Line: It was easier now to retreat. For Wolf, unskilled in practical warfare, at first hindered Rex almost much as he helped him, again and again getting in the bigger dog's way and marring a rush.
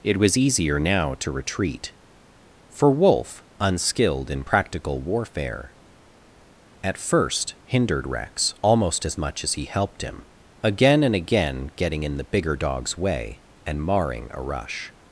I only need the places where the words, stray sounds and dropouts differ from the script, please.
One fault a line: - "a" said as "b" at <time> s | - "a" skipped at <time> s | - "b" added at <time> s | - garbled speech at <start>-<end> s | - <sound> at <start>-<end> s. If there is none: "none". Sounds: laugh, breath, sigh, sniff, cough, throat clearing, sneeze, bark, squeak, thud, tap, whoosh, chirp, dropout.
- "as" added at 9.0 s